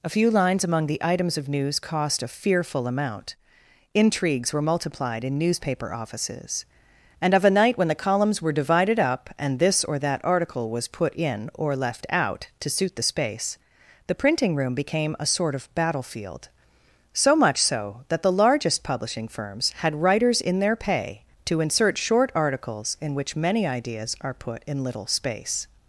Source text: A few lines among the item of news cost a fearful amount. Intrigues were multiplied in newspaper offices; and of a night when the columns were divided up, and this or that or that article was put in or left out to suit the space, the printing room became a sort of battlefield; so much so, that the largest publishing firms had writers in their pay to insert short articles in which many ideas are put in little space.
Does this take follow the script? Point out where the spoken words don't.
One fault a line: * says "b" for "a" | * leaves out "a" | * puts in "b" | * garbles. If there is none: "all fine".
* says "items" for "item"
* leaves out "or that"